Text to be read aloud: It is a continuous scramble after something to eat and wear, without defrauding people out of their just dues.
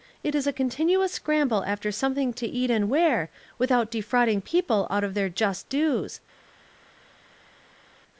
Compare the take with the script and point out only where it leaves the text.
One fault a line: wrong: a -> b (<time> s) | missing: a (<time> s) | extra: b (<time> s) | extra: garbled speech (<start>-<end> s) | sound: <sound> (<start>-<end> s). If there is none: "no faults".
no faults